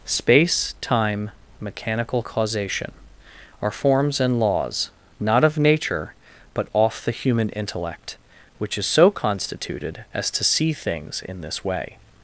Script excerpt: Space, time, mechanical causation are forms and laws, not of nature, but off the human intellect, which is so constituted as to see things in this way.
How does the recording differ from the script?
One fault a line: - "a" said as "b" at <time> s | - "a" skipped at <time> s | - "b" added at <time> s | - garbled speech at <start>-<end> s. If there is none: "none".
none